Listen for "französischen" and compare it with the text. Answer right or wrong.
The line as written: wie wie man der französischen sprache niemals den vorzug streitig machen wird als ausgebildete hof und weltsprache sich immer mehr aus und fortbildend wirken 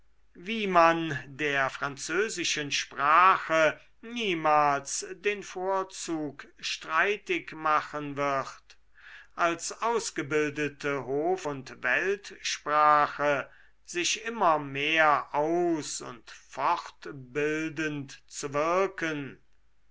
right